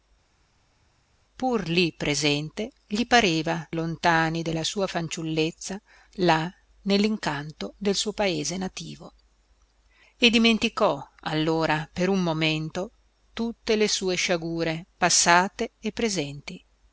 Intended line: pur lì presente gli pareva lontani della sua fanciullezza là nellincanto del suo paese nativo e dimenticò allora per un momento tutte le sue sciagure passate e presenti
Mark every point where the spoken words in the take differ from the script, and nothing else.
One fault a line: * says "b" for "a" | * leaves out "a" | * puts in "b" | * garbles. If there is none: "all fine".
all fine